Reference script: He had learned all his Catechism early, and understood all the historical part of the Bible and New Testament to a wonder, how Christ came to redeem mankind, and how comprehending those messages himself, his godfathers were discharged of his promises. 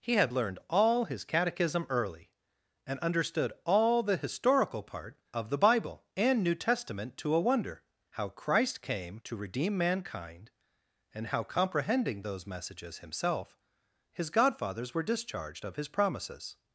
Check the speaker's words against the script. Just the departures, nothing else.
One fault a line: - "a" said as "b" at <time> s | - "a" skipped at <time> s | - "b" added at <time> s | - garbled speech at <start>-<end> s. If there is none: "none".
none